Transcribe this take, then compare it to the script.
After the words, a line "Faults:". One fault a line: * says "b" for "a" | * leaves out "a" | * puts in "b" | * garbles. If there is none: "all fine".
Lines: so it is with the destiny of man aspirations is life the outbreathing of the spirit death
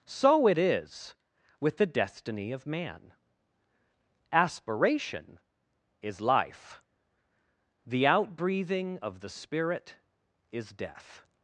so it is with the destiny of man aspiration is life the outbreathing of the spirit is death
Faults:
* says "aspiration" for "aspirations"
* puts in "is"